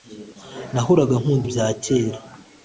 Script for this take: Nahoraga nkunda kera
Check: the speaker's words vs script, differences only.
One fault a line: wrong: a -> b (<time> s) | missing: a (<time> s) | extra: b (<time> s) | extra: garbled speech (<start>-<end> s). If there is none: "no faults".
extra: ibya (1.5 s)